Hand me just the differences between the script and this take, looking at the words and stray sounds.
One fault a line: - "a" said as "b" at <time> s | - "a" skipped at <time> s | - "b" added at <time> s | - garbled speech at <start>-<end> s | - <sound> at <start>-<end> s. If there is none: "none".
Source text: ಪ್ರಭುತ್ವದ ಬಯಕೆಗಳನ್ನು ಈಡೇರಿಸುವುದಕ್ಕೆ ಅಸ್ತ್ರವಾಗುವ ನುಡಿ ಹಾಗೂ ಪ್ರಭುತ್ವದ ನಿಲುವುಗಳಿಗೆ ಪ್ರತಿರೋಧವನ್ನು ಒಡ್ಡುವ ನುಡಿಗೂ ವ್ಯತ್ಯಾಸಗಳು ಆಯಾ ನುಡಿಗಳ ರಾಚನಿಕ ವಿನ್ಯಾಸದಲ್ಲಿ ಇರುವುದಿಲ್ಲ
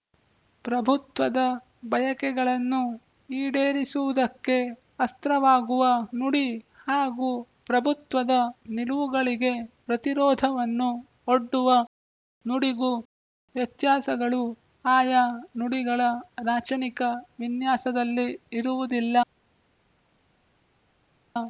none